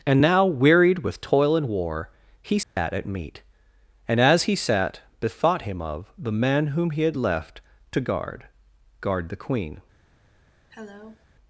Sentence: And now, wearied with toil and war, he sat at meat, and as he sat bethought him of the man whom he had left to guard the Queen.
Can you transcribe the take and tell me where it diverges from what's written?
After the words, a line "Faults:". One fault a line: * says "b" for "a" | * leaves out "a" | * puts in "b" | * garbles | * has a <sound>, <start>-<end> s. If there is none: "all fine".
And now, wearied with toil and war, he sat at meat, and as he sat bethought him of the man whom he had left to guard guard the Queen.
Faults:
* has a dropout, 2.6-2.8 s
* puts in "guard"
* has a cough, 10.7-11.3 s